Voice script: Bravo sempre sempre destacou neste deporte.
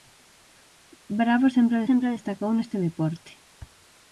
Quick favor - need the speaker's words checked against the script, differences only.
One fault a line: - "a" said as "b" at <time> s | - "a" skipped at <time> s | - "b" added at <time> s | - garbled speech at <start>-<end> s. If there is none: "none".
none